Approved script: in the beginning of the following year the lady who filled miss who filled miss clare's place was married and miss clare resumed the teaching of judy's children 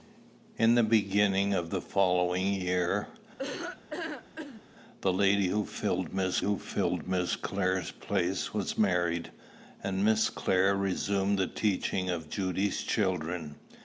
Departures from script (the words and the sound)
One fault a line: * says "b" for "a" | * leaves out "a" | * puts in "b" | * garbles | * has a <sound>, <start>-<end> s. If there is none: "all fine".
* has a laugh, 3.4-4.6 s